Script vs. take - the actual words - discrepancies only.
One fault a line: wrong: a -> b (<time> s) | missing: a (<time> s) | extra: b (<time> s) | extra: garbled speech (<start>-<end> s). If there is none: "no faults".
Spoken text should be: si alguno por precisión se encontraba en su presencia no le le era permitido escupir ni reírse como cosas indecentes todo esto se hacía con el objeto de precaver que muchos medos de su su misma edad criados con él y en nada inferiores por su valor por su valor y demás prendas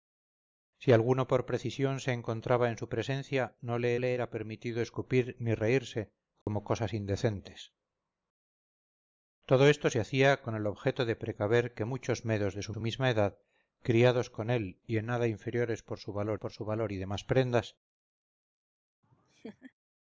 no faults